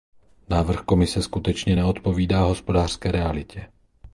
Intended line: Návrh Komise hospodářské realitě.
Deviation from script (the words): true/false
true